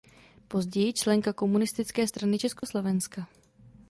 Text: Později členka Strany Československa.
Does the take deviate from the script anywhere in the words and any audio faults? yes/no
yes